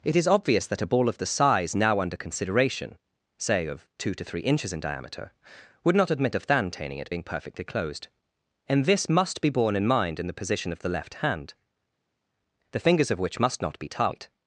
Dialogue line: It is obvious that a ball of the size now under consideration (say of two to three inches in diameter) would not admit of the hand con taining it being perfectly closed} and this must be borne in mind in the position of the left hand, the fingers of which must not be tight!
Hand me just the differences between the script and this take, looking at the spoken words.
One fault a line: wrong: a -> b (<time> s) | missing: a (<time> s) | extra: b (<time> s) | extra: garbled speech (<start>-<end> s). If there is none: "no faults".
wrong: the hand con -> than (6.5 s)